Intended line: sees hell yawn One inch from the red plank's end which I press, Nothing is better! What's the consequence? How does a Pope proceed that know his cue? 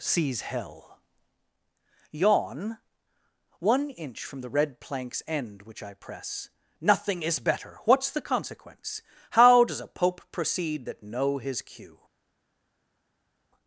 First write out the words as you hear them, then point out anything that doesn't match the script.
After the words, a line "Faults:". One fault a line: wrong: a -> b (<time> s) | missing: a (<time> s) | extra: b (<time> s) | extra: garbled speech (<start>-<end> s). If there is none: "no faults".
sees hell yawn One inch from the red plank's end which I press, Nothing is better! What's the consequence? How does a Pope proceed that know his cue?
Faults:
no faults